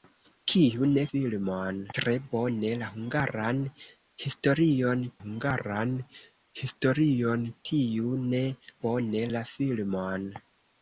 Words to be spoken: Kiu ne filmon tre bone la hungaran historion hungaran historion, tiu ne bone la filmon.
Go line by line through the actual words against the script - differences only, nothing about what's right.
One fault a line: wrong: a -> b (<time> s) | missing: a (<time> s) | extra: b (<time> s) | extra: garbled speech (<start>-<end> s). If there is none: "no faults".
no faults